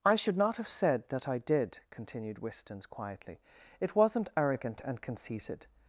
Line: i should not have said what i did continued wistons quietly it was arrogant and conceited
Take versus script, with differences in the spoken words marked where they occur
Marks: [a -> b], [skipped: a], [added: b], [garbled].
i should not have said [what -> that] i did continued wistons quietly it [was -> wasn't] arrogant and conceited